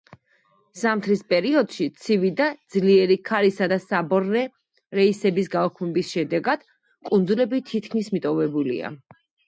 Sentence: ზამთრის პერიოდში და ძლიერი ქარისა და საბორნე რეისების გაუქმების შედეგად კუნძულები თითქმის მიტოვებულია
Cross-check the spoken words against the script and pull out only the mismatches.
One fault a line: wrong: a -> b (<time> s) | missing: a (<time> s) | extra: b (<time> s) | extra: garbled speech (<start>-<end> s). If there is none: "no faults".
extra: ცივი (2.0 s)